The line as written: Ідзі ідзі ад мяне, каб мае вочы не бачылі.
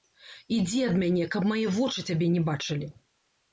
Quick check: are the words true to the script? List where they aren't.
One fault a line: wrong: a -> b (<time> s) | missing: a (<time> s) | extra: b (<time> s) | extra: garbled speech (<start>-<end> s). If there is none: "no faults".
missing: ідзі (0.8 s)
extra: цябе (2.1 s)